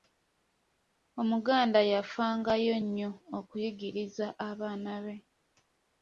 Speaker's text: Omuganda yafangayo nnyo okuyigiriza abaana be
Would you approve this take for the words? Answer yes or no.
yes